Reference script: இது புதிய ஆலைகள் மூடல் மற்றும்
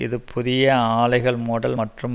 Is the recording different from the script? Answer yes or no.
no